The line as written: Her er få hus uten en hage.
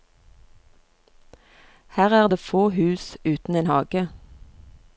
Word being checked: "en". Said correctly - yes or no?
yes